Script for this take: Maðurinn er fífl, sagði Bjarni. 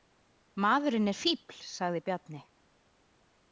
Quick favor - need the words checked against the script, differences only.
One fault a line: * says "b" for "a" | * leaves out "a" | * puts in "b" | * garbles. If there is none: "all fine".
all fine